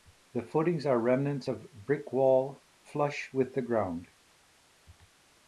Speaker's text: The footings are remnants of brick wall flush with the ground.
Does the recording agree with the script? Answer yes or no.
yes